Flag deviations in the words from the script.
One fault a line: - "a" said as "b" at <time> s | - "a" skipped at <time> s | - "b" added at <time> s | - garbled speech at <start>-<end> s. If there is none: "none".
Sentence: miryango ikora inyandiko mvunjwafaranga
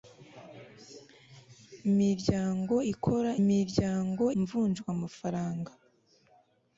- "inyandiko" said as "miryango" at 3.5 s